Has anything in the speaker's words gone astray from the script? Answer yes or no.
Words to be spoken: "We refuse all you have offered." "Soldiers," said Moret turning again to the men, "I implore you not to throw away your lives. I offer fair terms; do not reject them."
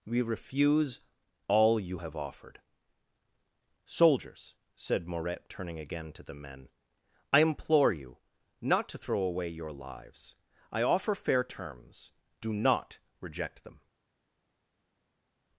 no